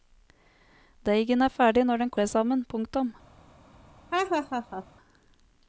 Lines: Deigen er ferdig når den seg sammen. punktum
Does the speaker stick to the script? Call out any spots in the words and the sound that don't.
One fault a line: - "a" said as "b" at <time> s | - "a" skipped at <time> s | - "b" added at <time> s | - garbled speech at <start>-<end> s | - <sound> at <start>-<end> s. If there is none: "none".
- laugh at 4.1-4.9 s